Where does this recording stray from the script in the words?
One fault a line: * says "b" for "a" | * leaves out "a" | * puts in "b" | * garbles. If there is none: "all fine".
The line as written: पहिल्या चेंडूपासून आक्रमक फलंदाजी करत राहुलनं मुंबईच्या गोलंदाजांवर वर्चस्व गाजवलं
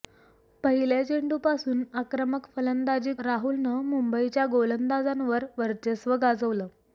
* leaves out "करत"